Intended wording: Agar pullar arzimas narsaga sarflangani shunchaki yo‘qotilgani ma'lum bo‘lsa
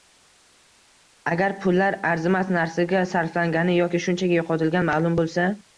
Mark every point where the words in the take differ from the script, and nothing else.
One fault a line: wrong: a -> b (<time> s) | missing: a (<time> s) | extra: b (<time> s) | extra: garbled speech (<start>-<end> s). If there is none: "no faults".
extra: yoki (3.8 s)